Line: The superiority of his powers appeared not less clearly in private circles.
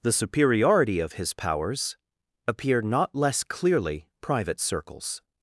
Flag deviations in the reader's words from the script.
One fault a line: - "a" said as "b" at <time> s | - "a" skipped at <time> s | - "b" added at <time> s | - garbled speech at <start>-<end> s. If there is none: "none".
- "appeared" said as "appear" at 2.5 s
- "in" skipped at 4.1 s